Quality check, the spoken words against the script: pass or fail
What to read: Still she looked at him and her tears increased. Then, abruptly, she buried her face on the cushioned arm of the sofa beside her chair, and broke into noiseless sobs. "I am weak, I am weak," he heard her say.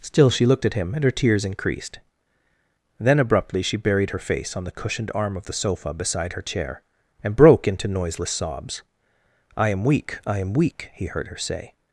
pass